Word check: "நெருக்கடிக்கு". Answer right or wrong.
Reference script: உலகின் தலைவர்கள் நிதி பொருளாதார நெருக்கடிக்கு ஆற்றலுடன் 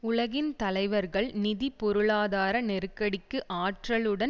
right